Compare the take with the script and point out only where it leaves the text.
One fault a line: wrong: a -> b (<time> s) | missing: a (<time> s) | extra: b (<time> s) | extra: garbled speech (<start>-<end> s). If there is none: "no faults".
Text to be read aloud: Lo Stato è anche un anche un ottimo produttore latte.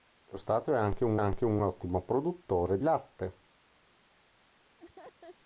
no faults